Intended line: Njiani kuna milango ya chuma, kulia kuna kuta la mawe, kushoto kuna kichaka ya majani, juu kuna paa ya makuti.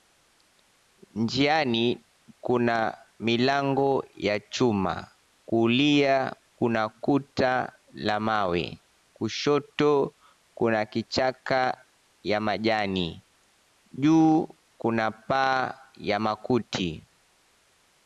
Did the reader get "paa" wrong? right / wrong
right